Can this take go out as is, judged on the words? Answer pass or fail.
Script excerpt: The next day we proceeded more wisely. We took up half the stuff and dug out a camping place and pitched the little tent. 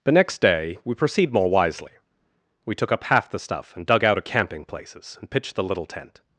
fail